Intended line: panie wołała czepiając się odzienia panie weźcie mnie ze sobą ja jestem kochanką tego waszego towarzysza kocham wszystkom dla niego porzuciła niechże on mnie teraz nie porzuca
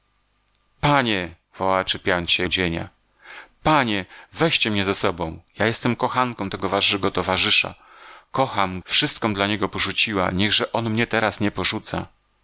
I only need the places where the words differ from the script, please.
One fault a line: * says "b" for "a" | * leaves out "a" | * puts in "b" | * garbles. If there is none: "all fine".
all fine